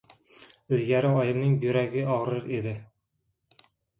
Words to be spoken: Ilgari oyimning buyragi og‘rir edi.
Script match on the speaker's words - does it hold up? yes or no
yes